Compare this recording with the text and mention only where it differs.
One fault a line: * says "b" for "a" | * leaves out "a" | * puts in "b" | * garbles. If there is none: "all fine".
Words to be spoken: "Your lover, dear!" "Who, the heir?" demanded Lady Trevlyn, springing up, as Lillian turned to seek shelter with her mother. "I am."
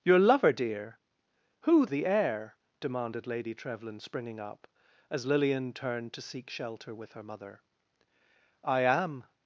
all fine